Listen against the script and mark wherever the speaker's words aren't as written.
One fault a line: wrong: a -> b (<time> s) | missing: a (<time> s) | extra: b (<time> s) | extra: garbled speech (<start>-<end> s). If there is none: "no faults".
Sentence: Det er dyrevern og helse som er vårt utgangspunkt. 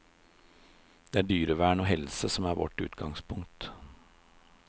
no faults